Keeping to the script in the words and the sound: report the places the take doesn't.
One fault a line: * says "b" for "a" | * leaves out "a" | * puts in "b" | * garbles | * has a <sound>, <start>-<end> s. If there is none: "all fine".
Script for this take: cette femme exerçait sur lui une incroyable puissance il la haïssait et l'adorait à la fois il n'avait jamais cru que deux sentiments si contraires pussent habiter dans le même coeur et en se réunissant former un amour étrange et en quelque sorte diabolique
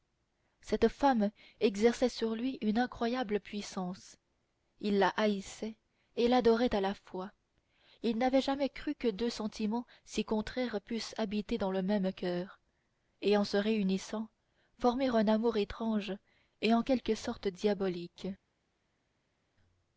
all fine